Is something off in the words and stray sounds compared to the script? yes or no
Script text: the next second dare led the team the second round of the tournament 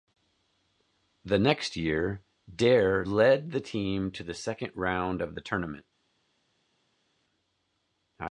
yes